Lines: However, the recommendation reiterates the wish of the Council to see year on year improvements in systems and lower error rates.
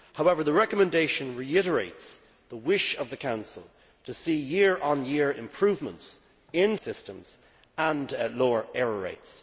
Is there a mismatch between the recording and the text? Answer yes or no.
no